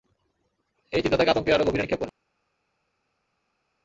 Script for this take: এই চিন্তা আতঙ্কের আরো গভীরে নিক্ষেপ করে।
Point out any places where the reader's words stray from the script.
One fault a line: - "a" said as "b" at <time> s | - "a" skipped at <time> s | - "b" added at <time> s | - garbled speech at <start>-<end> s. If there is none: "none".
- "তাকে" added at 1.2 s